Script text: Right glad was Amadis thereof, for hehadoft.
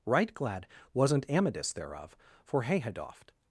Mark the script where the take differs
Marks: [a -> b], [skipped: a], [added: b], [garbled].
Right glad [was -> wasn't] Amadis thereof, for hehadoft.